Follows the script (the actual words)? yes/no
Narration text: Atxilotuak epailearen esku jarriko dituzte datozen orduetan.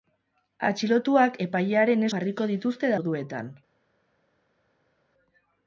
no